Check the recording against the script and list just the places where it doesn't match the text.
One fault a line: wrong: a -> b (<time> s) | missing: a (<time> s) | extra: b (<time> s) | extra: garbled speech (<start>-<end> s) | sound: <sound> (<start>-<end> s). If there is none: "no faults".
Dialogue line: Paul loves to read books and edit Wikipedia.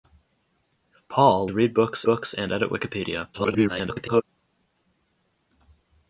missing: loves (1.5 s)
extra: books (2.0 s)
extra: garbled speech (3.3-4.2 s)